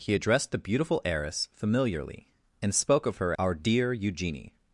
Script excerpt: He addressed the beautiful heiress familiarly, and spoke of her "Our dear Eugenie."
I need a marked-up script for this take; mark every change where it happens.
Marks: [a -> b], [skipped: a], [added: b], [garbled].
He addressed the beautiful heiress familiarly, and spoke of her "Our dear Eugenie."